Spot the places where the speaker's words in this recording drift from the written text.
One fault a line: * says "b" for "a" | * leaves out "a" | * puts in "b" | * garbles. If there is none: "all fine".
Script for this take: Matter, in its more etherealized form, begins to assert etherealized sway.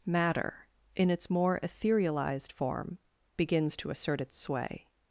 * says "its" for "etherealized"